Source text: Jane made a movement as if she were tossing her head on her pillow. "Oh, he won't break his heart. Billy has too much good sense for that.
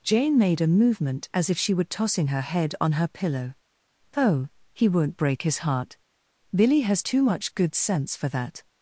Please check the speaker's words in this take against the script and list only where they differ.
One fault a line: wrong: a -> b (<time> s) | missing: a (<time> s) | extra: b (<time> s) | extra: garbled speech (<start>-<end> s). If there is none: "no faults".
no faults